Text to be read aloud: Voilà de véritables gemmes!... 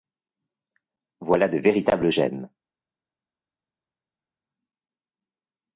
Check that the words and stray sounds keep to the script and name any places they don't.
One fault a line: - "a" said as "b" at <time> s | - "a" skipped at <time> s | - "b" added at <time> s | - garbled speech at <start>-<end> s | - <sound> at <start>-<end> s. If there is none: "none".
none